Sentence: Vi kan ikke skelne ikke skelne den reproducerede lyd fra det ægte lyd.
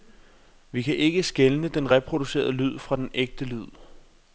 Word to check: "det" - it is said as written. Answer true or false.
false